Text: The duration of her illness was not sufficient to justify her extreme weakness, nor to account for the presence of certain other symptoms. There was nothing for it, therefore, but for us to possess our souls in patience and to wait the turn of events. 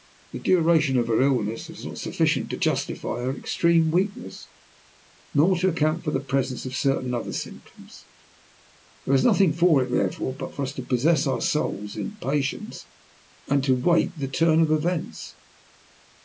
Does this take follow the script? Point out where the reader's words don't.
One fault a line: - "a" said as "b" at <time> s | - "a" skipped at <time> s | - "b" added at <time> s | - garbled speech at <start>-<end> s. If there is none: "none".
none